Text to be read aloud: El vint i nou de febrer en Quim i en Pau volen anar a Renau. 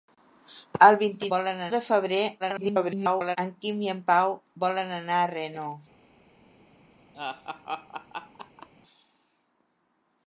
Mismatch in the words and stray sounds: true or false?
true